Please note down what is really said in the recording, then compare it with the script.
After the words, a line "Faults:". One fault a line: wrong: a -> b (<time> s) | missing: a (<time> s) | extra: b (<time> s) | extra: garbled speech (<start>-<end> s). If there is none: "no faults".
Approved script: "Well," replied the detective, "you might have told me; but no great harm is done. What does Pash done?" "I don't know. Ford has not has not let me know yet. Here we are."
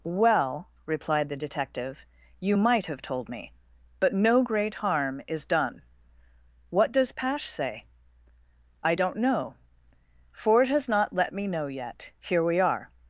"Well," replied the detective, "you might have told me; but no great harm is done. What does Pash say?" "I don't know. Ford has not let me know yet. Here we are."
Faults:
wrong: done -> say (7.5 s)
missing: has not (11.1 s)